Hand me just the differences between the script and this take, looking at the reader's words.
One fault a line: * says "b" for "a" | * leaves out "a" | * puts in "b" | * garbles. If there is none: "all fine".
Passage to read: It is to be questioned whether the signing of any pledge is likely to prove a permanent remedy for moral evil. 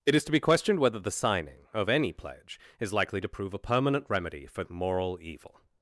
all fine